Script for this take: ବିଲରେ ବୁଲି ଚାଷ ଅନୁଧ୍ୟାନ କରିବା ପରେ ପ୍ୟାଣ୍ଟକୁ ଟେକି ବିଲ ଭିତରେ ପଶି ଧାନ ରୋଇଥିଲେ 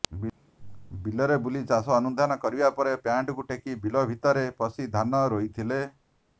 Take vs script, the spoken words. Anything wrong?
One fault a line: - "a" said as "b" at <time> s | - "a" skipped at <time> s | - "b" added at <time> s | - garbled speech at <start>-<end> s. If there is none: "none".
none